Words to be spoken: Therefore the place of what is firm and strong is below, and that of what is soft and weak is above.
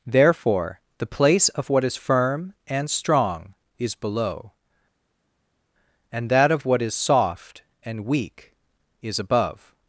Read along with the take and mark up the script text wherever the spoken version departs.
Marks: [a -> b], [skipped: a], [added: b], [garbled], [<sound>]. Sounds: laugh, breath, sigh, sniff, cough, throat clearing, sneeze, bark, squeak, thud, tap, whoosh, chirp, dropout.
Therefore the place of what is firm and strong is below, and that of what is soft and weak is above.